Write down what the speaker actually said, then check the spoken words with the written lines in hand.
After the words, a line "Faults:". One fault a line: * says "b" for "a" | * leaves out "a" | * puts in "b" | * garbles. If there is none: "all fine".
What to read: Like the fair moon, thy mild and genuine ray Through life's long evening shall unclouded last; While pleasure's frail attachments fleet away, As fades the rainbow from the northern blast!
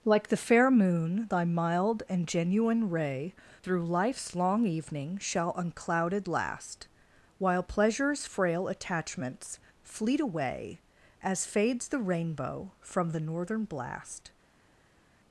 Like the fair moon, thy mild and genuine ray Through life's long evening shall unclouded last; While pleasure's frail attachments fleet away, As fades the rainbow from the northern blast!
Faults:
all fine